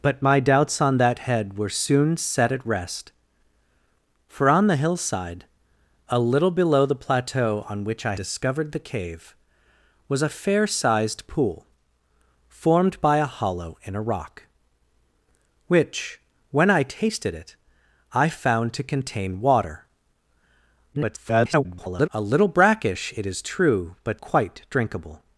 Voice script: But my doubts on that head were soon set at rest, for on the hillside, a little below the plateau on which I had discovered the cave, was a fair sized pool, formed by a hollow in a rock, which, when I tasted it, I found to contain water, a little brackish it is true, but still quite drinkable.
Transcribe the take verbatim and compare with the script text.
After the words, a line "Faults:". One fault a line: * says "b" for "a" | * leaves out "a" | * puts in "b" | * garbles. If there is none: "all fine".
But my doubts on that head were soon set at rest, for on the hillside, a little below the plateau on which I discovered the cave, was a fair sized pool, formed by a hollow in a rock, which, when I tasted it, I found to contain water, [garbled] a little brackish it is true, but quite drinkable.
Faults:
* leaves out "had"
* garbles
* leaves out "still"